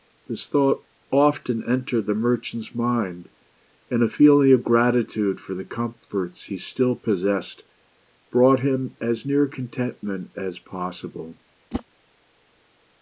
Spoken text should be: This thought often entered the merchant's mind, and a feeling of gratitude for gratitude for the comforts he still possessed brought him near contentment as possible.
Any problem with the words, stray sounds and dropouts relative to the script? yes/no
yes